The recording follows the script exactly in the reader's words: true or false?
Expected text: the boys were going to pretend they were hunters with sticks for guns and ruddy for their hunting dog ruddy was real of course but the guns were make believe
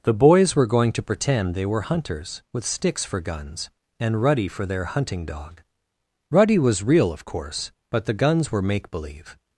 true